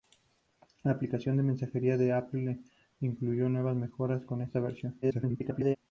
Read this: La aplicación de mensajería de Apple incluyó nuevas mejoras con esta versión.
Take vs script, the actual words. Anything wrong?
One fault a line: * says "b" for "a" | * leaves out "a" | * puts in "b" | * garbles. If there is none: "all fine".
* garbles